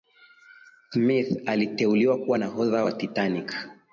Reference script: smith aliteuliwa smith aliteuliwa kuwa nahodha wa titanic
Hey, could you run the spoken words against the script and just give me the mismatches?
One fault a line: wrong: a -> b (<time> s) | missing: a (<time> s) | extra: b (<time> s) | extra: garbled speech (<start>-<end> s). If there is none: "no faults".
missing: smith aliteuliwa (2.2 s)